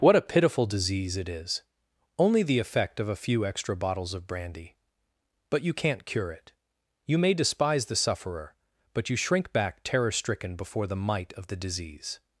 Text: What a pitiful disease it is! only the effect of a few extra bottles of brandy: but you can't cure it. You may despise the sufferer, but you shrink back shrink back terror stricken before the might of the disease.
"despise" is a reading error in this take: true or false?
false